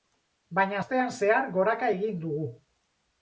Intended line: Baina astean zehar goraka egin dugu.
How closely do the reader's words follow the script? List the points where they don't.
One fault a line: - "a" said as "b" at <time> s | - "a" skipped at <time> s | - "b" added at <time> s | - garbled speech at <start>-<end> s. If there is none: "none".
none